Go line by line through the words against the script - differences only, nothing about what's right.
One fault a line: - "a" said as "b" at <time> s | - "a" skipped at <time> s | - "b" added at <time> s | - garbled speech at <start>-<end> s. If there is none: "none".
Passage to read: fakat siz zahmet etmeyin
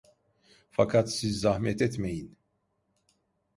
none